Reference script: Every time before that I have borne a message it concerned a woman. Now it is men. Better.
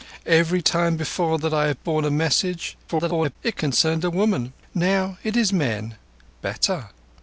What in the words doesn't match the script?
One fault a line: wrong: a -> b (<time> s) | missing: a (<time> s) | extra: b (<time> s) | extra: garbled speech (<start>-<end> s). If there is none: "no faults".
extra: garbled speech (2.9-3.4 s)